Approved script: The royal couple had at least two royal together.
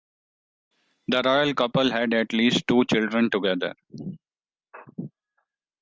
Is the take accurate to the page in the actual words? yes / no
no